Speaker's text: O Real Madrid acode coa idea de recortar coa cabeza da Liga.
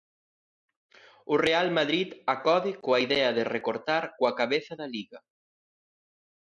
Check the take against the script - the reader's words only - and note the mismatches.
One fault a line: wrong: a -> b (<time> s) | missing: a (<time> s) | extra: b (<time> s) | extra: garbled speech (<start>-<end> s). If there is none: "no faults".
no faults